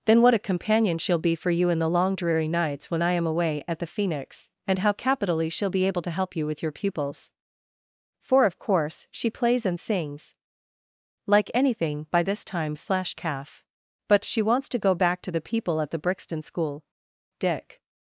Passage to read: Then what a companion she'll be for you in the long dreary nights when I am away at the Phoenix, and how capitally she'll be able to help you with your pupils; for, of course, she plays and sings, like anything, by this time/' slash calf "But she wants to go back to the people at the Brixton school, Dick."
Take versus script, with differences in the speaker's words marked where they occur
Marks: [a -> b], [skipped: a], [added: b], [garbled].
Then what a companion she'll be for you in the long dreary nights when I am away at the Phoenix, and how capitally she'll be able to help you with your pupils; for, of course, she plays and sings, like anything, by this time/' slash calf "But she wants to go back to the people at the Brixton school, Dick."